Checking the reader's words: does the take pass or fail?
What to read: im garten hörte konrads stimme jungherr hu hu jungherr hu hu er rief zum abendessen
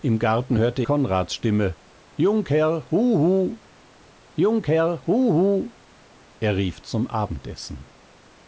pass